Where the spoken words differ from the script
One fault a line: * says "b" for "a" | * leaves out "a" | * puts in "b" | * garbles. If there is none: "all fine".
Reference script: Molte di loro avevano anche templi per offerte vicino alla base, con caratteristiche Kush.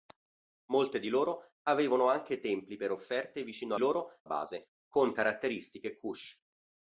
* says "loro" for "alla"